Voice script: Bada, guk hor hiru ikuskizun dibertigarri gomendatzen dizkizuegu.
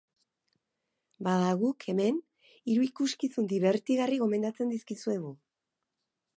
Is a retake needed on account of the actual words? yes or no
yes